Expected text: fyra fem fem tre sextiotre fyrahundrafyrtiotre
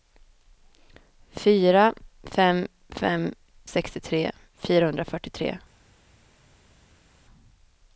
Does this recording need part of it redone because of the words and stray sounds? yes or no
yes